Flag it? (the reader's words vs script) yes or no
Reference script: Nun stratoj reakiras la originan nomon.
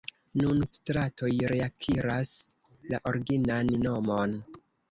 no